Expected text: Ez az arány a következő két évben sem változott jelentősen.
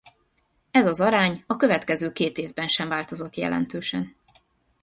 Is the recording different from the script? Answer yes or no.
no